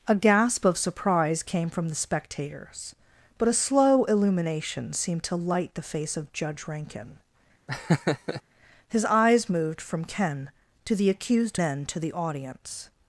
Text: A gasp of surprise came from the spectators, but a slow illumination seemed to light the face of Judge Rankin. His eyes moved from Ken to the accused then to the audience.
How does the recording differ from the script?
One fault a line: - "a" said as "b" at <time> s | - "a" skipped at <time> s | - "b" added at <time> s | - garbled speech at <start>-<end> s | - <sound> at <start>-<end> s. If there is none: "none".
- laugh at 7.7-8.4 s